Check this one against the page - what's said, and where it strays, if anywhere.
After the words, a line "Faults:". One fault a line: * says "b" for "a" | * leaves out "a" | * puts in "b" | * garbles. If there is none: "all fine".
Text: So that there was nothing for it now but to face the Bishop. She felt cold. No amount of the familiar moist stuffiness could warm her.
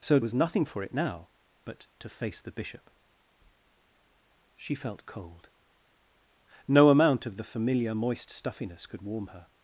So was nothing for it now but to face the Bishop. She felt cold. No amount of the familiar moist stuffiness could warm her.
Faults:
* leaves out "that there"